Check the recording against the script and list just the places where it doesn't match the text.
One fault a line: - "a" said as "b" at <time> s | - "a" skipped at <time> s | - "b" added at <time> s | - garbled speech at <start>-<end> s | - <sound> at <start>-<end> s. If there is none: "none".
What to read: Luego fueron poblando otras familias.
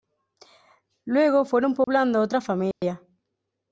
- dropout at 1.8-1.9 s
- dropout at 2.7-2.8 s